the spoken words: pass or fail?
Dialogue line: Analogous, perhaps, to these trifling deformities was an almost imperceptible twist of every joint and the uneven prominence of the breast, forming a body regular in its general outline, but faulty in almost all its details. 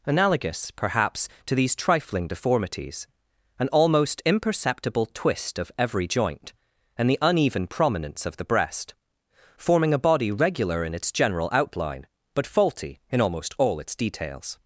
fail